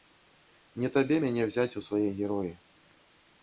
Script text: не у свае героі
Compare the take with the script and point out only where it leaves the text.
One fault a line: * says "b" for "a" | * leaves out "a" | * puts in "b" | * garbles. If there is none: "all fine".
* puts in "табе мяне ўзяць"